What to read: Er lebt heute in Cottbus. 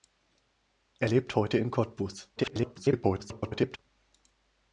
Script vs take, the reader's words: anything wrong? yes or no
yes